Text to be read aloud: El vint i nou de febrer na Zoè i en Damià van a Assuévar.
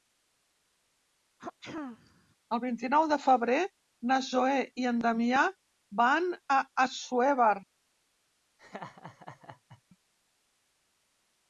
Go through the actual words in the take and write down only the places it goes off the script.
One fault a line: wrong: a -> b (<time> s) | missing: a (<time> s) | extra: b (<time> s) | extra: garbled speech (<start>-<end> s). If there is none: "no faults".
no faults